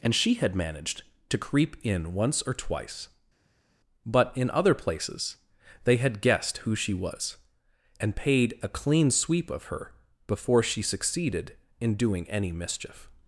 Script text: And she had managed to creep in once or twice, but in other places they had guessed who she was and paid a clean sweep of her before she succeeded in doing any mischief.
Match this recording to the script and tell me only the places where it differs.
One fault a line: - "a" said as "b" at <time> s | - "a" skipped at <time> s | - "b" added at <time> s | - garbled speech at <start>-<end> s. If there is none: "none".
none